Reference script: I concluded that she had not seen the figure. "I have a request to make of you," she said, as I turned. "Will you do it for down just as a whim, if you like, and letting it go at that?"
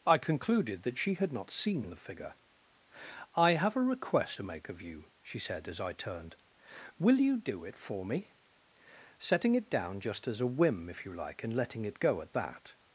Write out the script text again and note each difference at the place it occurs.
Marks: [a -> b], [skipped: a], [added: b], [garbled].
I concluded that she had not seen the figure. "I have a request to make of you," she said, as I turned. "Will you do it for [added: me setting it] down just as a whim, if you like, and letting it go at that?"